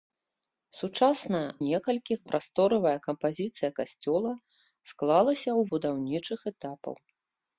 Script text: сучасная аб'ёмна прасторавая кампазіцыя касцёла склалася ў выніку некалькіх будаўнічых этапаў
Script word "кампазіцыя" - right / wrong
right